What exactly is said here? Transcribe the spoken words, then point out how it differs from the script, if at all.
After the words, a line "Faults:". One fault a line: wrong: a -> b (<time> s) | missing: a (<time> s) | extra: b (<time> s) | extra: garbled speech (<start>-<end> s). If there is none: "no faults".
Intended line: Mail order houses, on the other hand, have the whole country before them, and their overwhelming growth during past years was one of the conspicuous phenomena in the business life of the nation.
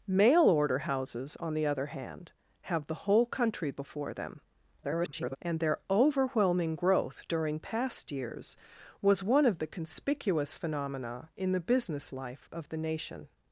Mail order houses, on the other hand, have the whole country before them, [garbled] and their overwhelming growth during past years was one of the conspicuous phenomena in the business life of the nation.
Faults:
extra: garbled speech (4.8-5.4 s)